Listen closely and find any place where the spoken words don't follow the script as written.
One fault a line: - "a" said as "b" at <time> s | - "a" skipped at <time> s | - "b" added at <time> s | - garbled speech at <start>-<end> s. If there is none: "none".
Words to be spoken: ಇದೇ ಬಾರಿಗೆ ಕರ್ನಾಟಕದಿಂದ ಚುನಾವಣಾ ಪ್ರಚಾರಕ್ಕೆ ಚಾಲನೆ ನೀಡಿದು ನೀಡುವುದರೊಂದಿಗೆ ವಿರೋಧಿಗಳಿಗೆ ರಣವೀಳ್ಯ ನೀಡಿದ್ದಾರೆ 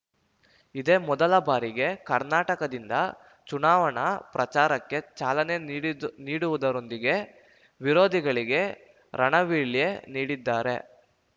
- "ಮೊದಲ" added at 1.1 s